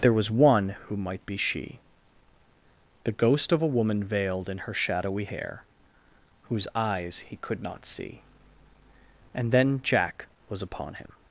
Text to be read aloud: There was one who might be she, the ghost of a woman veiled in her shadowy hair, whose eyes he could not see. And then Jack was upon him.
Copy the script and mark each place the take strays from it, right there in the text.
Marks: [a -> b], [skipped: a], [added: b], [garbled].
There was one who might be she, the ghost of a woman veiled in her shadowy hair, whose eyes he could not see. And then Jack was upon him.